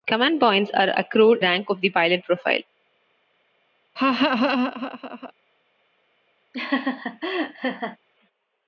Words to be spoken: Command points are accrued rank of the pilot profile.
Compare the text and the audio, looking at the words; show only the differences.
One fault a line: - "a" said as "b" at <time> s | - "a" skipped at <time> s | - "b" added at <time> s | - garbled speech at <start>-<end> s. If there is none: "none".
none